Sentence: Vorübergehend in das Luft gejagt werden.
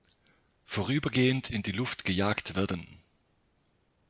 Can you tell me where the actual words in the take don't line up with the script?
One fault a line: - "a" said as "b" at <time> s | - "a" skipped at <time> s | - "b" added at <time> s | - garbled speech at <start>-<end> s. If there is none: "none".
- "das" said as "die" at 1.6 s